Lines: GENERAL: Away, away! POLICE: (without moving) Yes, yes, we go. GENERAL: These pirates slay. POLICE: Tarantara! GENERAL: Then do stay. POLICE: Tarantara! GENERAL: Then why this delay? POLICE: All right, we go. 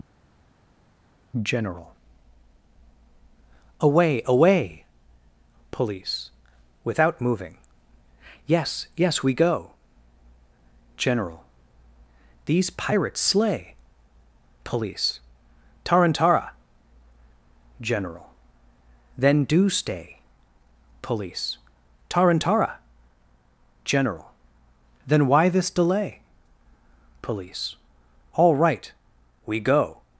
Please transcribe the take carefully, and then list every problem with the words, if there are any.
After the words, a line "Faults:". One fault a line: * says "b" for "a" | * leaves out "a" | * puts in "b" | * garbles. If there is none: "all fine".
GENERAL: Away, away! POLICE: (without moving) Yes, yes, we go. GENERAL: These pirates slay. POLICE: Tarantara! GENERAL: Then do stay. POLICE: Tarantara! GENERAL: Then why this delay? POLICE: All right, we go.
Faults:
all fine